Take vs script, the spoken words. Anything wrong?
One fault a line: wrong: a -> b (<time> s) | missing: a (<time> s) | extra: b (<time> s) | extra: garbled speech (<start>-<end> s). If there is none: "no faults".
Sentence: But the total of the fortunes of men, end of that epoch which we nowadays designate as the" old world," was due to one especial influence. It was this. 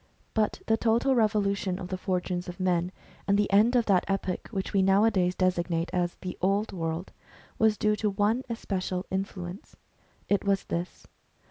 extra: revolution (1.1 s)
extra: and the (3.3 s)